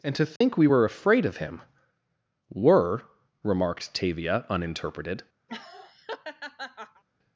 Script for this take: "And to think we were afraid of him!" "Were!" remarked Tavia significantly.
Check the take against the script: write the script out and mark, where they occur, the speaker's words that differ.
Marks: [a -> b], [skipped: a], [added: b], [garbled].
"And to think we were afraid of him!" "Were!" remarked Tavia [significantly. -> uninterpreted]